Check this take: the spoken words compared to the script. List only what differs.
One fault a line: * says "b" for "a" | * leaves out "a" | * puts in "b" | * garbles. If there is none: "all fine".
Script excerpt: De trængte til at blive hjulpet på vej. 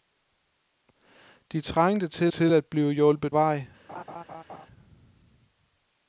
* puts in "til"
* leaves out "på"